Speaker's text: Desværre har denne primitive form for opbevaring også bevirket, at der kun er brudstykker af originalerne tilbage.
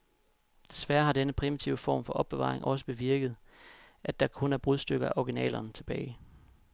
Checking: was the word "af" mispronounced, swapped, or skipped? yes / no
no